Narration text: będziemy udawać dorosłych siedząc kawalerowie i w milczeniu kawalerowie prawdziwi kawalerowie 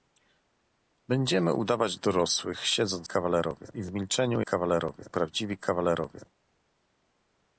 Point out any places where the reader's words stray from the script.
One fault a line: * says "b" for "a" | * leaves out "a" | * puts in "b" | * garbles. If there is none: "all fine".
all fine